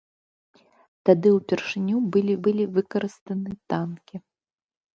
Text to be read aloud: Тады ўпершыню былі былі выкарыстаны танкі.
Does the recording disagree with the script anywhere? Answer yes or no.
no